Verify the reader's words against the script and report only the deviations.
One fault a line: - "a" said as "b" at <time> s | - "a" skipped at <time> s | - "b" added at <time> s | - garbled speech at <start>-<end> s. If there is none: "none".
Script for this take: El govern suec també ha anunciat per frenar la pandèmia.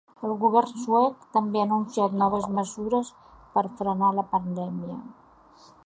- "noves mesures" added at 2.2 s